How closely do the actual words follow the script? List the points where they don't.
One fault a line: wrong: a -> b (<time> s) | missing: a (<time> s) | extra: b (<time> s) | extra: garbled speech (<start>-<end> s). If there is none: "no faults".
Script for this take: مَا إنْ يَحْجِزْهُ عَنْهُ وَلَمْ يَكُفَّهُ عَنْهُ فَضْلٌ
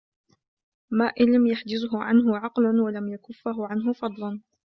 extra: لَمْ (1.4 s)
extra: عَقْلٌ (2.4 s)